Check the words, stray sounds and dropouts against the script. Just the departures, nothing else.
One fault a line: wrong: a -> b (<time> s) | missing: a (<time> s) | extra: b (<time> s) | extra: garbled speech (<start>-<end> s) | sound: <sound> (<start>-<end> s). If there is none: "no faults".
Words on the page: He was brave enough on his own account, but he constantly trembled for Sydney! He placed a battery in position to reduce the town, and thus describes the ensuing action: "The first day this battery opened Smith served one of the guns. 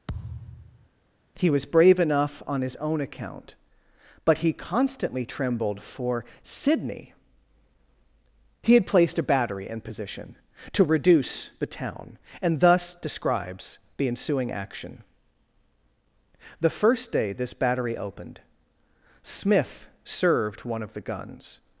sound: thud (0.1-0.9 s)
extra: had (8.7 s)